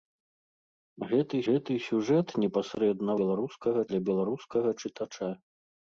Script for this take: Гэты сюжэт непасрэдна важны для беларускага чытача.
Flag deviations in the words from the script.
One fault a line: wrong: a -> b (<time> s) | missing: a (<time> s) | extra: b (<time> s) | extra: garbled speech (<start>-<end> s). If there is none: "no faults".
extra: гэты (1.5 s)
wrong: важны -> беларускага (3.2 s)